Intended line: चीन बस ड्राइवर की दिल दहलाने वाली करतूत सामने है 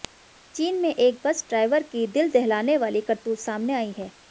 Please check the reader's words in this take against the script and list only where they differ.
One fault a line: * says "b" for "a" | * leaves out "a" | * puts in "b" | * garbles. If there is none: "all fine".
* puts in "में एक"
* puts in "आई"